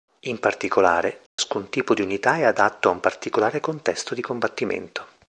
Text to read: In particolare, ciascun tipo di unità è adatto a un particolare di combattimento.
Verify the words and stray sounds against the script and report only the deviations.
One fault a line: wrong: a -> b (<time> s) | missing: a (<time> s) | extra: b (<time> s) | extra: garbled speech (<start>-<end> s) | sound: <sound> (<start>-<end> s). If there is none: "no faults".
sound: dropout (1.3-1.4 s)
extra: contesto (3.6 s)